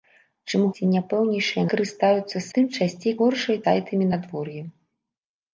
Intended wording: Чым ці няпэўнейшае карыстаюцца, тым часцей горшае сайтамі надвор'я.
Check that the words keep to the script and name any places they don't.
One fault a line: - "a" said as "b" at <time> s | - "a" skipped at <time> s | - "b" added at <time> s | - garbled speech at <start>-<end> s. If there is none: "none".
none